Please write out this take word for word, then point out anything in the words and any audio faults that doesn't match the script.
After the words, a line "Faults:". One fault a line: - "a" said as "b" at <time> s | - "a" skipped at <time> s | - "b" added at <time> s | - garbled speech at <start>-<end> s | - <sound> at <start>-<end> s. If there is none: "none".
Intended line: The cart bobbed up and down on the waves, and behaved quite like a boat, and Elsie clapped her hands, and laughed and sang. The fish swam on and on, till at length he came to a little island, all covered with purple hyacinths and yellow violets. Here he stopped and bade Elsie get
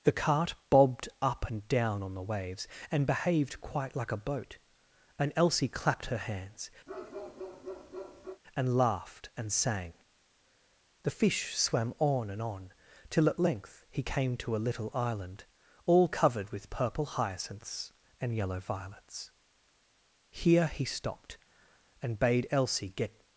The cart bobbed up and down on the waves, and behaved quite like a boat, and Elsie clapped her hands, and laughed and sang. The fish swam on and on, till at length he came to a little island, all covered with purple hyacinths and yellow violets. Here he stopped and bade Elsie get
Faults:
- bark at 6.9-8.4 s